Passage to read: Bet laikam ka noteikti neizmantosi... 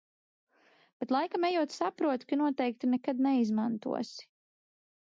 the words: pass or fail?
fail